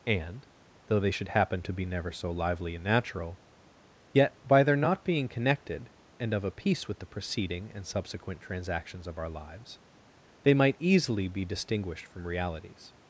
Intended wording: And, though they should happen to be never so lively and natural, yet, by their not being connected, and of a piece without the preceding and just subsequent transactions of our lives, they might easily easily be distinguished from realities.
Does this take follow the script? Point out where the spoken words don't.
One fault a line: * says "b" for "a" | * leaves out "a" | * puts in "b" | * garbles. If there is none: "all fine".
* says "with" for "without"
* leaves out "just"
* leaves out "easily"